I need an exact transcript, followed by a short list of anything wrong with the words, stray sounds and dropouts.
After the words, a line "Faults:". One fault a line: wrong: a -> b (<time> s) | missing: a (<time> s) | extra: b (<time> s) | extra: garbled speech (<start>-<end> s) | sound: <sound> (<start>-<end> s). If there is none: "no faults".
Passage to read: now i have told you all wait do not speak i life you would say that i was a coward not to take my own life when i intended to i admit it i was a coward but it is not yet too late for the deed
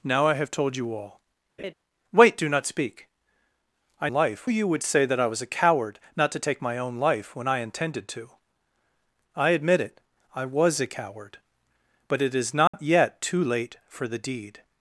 now i have told you all wait do not speak i life you would say that i was a coward not to take my own life when i intended to i admit it i was a coward but it is not yet too late for the deed
Faults:
sound: laugh (1.6-1.7 s)
sound: dropout (12.7-12.7 s)